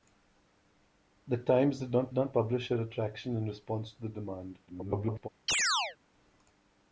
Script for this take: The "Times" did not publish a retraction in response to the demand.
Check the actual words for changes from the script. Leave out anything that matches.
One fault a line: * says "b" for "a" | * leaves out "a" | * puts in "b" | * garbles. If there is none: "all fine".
* puts in "not"
* garbles